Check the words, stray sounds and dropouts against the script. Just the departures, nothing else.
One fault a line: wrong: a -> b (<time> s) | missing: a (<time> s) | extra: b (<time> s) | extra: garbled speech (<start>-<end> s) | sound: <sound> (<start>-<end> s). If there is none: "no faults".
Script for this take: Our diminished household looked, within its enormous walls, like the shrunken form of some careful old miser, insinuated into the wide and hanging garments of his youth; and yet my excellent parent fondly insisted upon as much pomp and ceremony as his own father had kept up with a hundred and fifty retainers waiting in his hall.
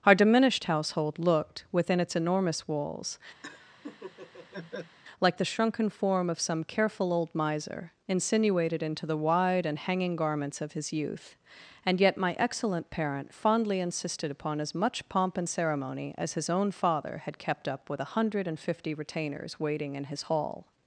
sound: laugh (3.4-5.0 s)